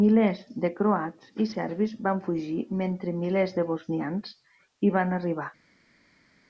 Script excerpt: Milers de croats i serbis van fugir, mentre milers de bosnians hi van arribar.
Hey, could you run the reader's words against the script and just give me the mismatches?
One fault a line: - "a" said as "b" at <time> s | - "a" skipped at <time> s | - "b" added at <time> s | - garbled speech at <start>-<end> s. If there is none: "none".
none